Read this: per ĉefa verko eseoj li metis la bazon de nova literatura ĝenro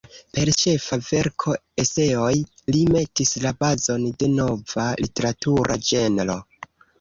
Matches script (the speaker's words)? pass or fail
pass